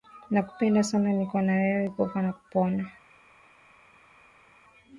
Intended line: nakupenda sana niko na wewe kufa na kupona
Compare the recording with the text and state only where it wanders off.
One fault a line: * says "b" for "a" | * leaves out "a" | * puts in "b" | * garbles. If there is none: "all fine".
all fine